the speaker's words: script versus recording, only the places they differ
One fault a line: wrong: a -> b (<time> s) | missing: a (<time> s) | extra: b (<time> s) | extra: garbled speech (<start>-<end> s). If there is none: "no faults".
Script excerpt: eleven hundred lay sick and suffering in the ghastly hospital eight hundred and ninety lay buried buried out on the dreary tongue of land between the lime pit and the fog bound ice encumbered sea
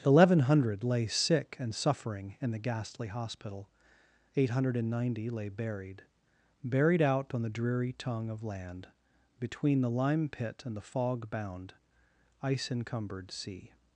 no faults